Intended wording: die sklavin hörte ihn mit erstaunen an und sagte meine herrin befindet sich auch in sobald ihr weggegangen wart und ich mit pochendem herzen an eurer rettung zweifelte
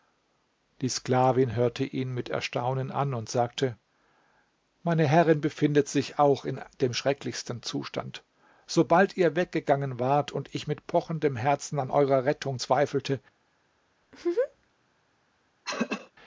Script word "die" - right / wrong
right